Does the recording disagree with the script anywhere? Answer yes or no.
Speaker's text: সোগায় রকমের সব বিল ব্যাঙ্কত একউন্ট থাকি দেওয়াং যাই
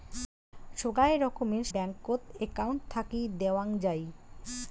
yes